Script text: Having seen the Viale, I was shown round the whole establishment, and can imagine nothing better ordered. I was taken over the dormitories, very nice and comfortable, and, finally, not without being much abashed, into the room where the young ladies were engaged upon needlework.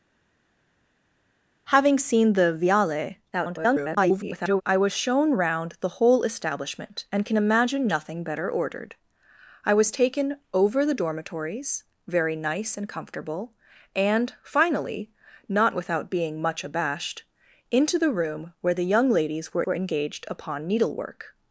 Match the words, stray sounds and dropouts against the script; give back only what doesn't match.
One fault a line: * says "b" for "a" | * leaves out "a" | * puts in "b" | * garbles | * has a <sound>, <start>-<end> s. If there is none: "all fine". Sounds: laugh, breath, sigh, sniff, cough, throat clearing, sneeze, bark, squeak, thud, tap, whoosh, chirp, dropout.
* garbles
* puts in "were"